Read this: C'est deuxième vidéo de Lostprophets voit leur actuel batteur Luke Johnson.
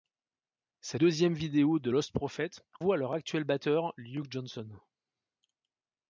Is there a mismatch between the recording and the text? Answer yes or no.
no